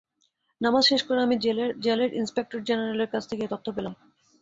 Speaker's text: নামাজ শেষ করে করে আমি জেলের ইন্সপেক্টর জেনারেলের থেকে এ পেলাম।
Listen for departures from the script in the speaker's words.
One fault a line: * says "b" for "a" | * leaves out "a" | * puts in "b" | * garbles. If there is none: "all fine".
* leaves out "করে"
* puts in "কাছ"
* puts in "তথ্য"